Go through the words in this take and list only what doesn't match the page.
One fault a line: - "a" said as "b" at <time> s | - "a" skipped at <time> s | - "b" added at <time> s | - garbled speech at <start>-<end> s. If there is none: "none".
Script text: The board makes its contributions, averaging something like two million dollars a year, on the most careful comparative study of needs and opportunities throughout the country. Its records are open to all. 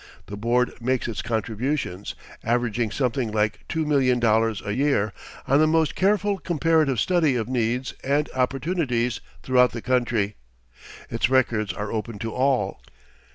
none